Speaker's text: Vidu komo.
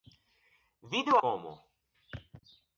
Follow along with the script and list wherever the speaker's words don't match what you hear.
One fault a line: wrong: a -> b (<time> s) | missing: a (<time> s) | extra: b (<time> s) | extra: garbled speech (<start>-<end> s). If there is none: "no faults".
no faults